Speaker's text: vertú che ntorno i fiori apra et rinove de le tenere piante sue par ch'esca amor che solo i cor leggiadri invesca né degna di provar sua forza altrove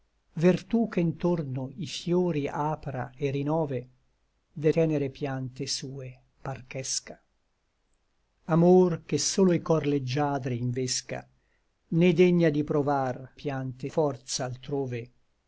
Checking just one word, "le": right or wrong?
wrong